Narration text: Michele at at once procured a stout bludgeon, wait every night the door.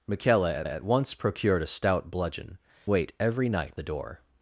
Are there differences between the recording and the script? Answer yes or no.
no